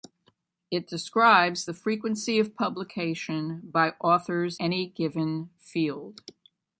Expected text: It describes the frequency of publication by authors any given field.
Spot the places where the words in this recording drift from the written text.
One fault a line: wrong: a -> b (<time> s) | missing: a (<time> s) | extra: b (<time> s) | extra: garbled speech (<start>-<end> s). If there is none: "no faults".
no faults